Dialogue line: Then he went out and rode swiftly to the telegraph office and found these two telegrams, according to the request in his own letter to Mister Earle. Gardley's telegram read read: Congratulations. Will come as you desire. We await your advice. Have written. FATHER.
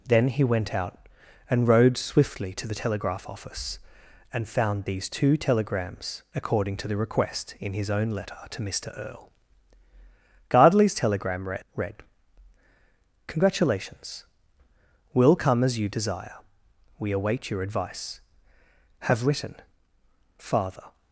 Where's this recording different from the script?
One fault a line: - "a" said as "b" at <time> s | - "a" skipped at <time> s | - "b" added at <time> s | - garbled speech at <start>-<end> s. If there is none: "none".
none